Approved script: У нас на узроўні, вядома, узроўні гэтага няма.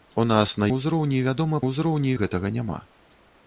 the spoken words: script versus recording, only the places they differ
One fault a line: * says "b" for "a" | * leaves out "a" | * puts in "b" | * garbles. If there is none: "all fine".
all fine